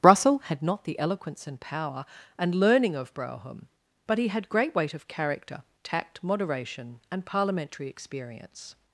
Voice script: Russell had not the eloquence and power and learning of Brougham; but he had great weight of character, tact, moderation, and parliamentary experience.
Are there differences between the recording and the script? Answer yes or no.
no